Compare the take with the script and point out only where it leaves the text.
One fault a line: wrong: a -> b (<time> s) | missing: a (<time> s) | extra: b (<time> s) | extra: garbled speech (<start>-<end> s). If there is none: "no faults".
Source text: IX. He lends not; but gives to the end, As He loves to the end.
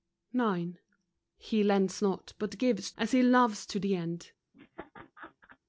missing: to the end (2.9 s)